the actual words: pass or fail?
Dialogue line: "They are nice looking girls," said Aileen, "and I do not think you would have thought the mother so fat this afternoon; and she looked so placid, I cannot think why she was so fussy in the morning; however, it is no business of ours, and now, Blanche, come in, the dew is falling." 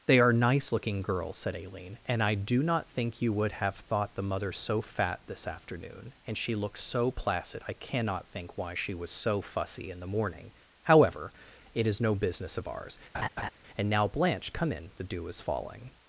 pass